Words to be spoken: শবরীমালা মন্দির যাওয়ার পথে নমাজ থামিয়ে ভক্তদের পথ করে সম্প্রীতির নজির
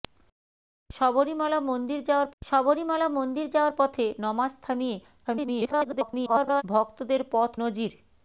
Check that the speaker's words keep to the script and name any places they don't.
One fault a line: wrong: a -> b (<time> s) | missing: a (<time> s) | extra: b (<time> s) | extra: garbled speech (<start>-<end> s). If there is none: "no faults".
extra: শবরীমালা মন্দির যাওয়ার (2.4 s)
extra: garbled speech (5.2-6.6 s)
missing: করে সম্প্রীতির (7.5 s)